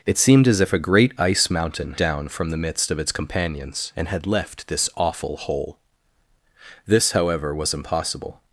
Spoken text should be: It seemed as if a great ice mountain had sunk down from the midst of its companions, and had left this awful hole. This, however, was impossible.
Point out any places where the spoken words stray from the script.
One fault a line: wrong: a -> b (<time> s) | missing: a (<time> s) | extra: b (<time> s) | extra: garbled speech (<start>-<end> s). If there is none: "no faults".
missing: had sunk (1.9 s)